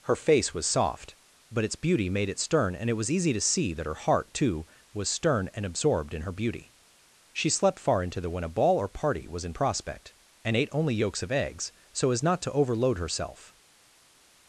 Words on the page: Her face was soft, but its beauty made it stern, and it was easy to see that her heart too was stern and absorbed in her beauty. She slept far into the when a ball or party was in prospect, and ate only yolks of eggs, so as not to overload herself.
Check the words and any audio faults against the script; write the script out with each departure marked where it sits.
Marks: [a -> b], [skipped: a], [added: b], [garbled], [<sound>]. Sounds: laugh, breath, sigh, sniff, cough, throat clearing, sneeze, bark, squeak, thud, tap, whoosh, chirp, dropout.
Her face was soft, but its beauty made it stern, and it was easy to see that her heart too was stern and absorbed in her beauty. She slept far into the when a ball or party was in prospect, and ate only yolks of eggs, so as not to overload herself.